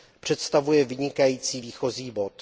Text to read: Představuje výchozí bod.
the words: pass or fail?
fail